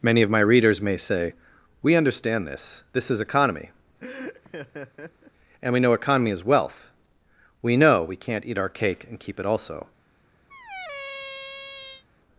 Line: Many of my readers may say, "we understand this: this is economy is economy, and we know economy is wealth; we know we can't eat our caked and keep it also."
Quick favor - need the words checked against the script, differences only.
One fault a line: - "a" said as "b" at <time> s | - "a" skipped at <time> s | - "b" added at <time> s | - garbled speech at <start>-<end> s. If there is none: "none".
- "is economy" skipped at 3.7 s
- "caked" said as "cake" at 8.7 s